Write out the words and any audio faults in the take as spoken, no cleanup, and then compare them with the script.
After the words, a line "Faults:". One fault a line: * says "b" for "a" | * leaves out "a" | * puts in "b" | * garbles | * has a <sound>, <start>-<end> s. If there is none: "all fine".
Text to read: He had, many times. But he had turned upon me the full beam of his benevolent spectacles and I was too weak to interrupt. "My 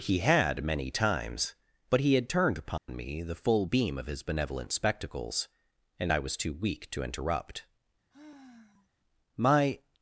He had, many times. But he had turned upon me the full beam of his benevolent spectacles and I was too weak to interrupt. "My
Faults:
* has a dropout, 2.8-2.9 s
* has a sigh, 8.1-8.9 s